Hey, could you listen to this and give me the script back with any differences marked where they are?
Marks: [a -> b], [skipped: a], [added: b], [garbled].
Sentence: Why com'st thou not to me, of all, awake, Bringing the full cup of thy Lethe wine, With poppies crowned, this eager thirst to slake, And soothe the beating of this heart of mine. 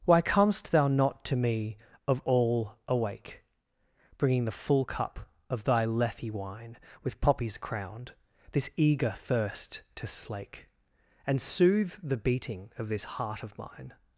Why com'st thou not to me, of all, awake, Bringing the full cup of thy Lethe wine, With poppies crowned, this eager thirst to slake, And soothe the beating of this heart of mine.